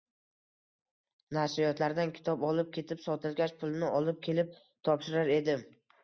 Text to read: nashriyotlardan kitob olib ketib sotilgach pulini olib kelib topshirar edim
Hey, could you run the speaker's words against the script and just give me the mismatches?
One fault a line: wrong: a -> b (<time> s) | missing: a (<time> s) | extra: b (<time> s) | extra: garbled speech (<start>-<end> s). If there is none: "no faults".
no faults